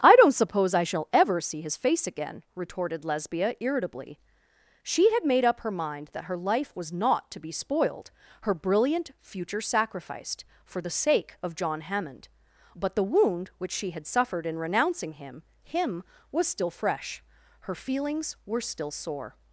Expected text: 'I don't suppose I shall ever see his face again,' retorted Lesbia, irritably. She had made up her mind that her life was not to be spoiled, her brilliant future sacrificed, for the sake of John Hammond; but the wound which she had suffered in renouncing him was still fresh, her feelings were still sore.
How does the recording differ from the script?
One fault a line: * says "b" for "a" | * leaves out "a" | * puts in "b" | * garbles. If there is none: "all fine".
* puts in "him"